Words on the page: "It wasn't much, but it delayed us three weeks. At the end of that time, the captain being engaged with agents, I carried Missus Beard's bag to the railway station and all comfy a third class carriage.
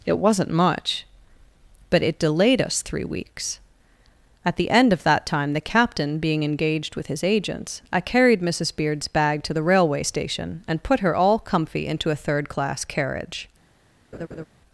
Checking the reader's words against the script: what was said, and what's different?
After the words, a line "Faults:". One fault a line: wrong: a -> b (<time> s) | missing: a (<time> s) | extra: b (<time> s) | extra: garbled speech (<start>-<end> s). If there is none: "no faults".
"It wasn't much, but it delayed us three weeks. At the end of that time, the captain being engaged with his agents, I carried Missus Beard's bag to the railway station and put her all comfy into a third class carriage.
Faults:
extra: his (7.0 s)
extra: put her (10.8 s)
extra: into (11.8 s)